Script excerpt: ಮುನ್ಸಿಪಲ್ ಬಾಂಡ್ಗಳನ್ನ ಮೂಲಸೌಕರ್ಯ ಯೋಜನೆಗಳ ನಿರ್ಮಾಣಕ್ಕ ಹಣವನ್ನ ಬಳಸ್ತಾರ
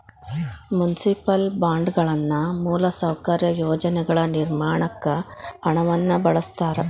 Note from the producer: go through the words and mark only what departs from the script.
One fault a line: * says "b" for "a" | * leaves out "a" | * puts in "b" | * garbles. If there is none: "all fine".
all fine